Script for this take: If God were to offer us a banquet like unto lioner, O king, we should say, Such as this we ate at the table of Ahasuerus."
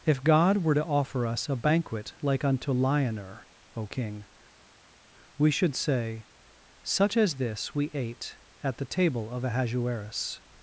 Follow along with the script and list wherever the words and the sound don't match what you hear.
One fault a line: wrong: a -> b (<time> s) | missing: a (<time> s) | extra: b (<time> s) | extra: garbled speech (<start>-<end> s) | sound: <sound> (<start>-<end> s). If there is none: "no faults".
no faults